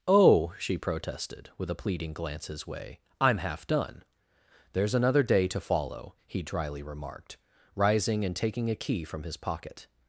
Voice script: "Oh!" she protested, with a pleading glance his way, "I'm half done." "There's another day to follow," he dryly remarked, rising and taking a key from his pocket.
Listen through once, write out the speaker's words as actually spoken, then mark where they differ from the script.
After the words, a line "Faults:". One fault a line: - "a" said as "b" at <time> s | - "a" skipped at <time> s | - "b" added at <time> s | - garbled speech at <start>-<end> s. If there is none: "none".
"Oh!" she protested, with a pleading glance his way, "I'm half done." "There's another day to follow," he dryly remarked, rising and taking a key from his pocket.
Faults:
none